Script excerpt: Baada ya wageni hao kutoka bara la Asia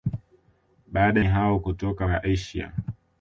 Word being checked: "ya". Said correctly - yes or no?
no